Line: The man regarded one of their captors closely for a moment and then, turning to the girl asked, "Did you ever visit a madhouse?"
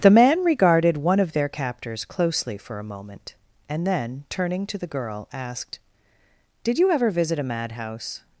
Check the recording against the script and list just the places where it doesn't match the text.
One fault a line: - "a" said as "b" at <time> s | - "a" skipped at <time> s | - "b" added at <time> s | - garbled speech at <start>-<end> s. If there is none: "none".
none